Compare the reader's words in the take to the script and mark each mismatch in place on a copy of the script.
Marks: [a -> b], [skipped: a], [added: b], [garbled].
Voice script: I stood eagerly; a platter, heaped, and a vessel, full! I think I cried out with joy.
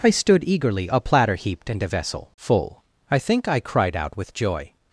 I stood eagerly; a platter, heaped, and a vessel, full! I think I cried out with joy.